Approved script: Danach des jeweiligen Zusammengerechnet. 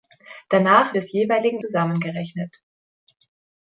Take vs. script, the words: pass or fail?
pass